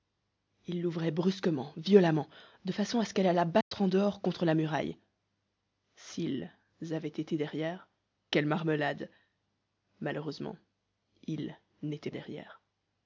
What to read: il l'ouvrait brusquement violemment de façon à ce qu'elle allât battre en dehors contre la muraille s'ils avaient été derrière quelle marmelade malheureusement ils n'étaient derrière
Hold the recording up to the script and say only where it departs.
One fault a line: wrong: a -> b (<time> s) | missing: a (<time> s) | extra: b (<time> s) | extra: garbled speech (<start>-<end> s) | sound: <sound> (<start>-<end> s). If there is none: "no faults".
sound: dropout (3.6-3.7 s)